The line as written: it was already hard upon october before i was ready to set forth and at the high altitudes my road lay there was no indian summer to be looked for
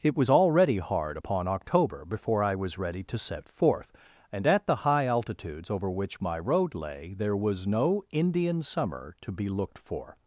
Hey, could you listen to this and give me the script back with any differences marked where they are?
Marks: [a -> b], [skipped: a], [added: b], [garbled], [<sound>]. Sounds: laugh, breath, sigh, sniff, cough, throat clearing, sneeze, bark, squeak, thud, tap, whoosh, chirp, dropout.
it was already hard upon october before i was ready to set forth and at the high altitudes [added: over which] my road lay there was no indian summer to be looked for